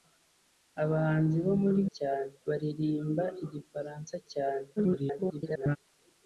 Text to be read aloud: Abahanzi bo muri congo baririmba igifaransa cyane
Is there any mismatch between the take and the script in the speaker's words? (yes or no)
yes